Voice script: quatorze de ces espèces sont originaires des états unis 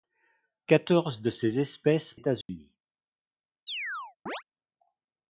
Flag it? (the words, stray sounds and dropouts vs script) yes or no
yes